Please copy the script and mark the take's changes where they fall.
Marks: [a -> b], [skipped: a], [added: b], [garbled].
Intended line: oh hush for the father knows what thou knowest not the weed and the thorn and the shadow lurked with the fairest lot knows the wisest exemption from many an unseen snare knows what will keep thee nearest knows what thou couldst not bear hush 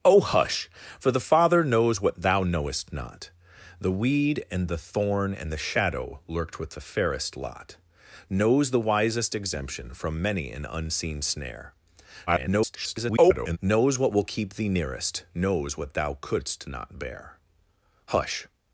oh hush for the father knows what thou knowest not the weed and the thorn and the shadow lurked with the fairest lot knows the wisest exemption from many an unseen snare [garbled] knows what will keep thee nearest knows what thou couldst not bear hush